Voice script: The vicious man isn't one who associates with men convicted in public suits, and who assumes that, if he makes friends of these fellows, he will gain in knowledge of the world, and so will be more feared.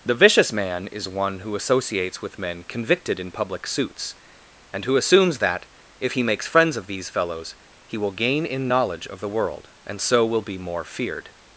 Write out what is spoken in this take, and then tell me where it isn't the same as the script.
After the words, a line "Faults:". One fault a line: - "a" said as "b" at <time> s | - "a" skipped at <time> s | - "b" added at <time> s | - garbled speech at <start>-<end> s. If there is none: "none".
The vicious man is one who associates with men convicted in public suits, and who assumes that, if he makes friends of these fellows, he will gain in knowledge of the world, and so will be more feared.
Faults:
- "isn't" said as "is" at 0.9 s